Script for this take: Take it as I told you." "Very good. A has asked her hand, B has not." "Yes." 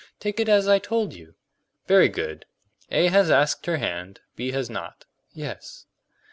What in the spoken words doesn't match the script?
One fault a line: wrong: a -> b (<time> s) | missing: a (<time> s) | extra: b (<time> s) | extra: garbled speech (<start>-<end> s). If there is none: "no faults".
no faults